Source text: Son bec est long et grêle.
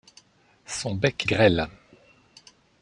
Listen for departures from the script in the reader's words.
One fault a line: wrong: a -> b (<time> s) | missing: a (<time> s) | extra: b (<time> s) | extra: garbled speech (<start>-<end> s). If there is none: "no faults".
missing: est long et (1.2 s)